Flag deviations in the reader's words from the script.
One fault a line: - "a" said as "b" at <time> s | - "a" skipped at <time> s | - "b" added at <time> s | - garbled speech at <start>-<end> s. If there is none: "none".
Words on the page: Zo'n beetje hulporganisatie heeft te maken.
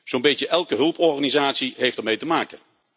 - "elke" added at 0.5 s
- "ermee" added at 2.0 s